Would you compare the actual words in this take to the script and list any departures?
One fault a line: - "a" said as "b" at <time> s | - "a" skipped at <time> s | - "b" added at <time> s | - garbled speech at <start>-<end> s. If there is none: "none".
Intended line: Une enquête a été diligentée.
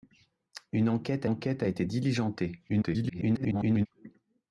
- "enquête" added at 1.3 s
- garbled speech at 2.7-3.9 s